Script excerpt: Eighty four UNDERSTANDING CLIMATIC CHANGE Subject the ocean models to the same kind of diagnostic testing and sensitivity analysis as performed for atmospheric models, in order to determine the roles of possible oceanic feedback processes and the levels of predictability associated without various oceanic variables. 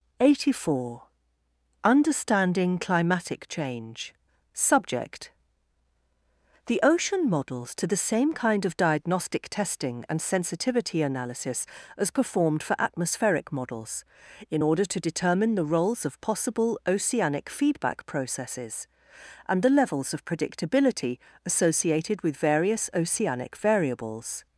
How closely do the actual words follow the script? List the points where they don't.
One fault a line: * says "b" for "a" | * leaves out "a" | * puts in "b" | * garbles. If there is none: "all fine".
* says "with" for "without"